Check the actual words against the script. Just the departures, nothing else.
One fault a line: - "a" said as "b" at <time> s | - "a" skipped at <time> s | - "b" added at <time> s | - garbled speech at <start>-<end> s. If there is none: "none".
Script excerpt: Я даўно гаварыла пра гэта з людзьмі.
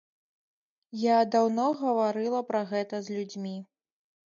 none